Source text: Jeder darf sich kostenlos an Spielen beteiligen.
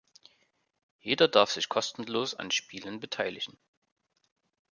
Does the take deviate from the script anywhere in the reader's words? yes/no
no